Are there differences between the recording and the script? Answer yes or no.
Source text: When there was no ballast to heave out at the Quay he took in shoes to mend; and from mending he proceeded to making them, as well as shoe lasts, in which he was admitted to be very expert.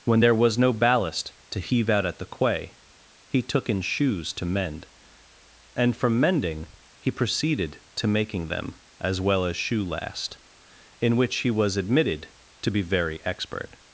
yes